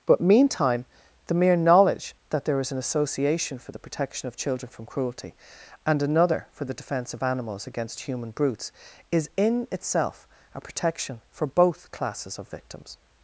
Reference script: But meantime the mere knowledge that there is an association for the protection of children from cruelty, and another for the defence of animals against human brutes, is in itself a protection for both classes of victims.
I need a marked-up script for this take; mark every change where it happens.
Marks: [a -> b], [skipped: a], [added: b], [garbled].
But meantime the mere knowledge that there is an association for the protection of children from cruelty, and another for the defence of animals against human brutes, is in itself a protection for both classes of victims.